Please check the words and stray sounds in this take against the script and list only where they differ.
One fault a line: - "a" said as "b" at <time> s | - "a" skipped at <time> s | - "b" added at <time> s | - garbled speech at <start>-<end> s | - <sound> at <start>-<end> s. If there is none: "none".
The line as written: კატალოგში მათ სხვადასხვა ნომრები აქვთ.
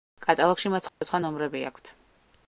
- dropout at 0.9-1.0 s